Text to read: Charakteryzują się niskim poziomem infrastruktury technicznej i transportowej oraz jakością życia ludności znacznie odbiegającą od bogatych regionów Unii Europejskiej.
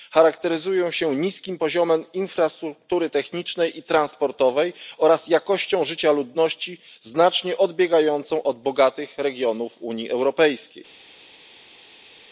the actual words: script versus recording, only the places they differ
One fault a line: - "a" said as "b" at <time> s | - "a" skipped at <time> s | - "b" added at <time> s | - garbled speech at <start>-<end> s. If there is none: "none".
none